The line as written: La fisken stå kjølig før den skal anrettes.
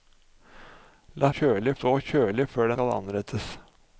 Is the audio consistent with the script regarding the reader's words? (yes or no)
no